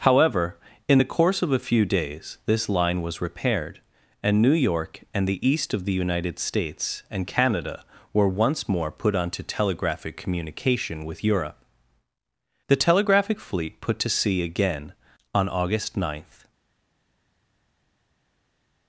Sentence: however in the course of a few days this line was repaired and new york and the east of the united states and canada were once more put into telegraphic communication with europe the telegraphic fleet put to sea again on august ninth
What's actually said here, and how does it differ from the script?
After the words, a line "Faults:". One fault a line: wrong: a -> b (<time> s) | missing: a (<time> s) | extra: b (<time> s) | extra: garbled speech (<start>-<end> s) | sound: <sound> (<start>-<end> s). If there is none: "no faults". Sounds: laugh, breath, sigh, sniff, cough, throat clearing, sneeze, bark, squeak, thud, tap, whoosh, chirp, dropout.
however in the course of a few days this line was repaired and new york and the east of the united states and canada were once more put onto telegraphic communication with europe the telegraphic fleet put to sea again on august ninth
Faults:
wrong: into -> onto (9.1 s)